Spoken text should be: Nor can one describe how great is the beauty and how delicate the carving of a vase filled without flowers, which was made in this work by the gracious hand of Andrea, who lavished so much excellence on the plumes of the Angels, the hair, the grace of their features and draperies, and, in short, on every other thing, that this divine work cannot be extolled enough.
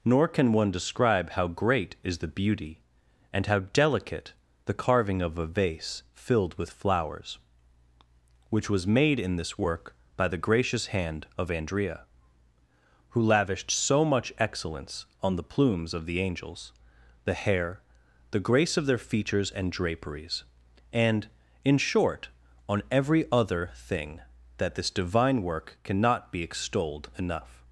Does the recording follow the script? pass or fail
fail